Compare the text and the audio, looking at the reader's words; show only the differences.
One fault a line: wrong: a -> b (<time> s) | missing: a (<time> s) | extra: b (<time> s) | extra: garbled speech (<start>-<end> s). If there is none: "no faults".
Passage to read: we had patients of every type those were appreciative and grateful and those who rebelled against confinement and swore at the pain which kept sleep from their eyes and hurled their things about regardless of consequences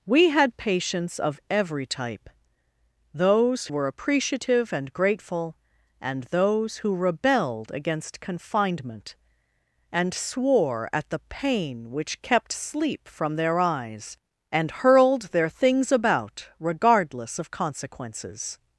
no faults